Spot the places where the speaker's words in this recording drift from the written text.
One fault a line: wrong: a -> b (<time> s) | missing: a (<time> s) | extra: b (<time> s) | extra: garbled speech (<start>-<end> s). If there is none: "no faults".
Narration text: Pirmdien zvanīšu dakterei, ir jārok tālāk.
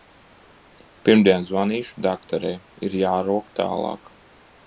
no faults